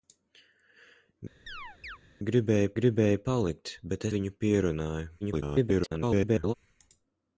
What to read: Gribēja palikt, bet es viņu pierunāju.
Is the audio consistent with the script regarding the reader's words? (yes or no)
no